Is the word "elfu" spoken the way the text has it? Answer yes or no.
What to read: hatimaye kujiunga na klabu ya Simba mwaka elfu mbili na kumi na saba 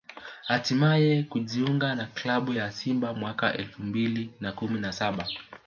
yes